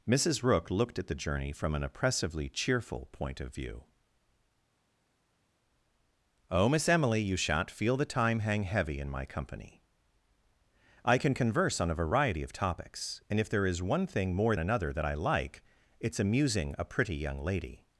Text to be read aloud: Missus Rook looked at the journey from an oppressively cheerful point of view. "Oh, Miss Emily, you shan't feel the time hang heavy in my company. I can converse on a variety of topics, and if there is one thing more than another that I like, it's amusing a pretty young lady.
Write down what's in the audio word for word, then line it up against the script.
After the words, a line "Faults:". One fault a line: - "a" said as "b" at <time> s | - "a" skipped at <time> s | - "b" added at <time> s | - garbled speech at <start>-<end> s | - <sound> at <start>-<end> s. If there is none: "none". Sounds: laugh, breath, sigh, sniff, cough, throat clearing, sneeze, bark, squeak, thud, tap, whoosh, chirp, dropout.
Missus Rook looked at the journey from an oppressively cheerful point of view. "Oh, Miss Emily, you shan't feel the time hang heavy in my company. I can converse on a variety of topics, and if there is one thing more another that I like, it's amusing a pretty young lady.
Faults:
- "than" skipped at 14.6 s